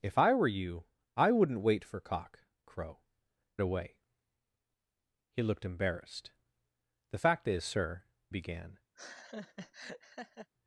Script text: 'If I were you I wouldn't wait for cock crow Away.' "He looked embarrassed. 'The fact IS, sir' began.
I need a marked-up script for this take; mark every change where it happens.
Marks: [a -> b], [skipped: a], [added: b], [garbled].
'If I were you I wouldn't wait for cock crow Away.' "He looked embarrassed. 'The fact IS, sir' began.